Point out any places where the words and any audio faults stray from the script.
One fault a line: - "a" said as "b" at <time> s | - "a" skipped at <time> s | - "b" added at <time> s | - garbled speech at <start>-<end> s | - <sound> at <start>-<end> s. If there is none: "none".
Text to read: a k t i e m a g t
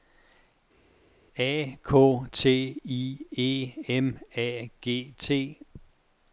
none